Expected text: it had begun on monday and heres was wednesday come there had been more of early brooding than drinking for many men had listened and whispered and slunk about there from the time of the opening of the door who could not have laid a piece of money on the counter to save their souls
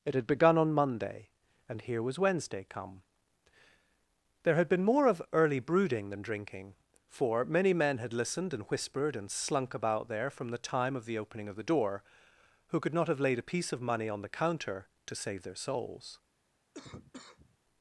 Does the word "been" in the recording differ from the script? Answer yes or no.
no